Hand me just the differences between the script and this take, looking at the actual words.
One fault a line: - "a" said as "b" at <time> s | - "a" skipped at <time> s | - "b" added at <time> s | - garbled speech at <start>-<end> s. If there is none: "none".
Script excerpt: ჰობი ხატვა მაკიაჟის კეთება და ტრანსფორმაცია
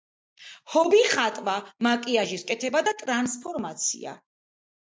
none